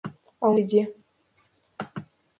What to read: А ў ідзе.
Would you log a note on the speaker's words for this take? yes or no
no